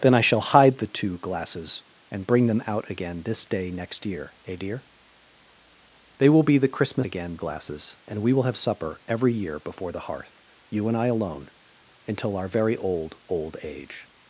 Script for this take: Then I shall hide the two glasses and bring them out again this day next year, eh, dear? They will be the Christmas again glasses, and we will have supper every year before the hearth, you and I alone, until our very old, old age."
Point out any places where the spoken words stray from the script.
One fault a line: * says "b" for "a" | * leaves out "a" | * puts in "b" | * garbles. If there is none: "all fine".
all fine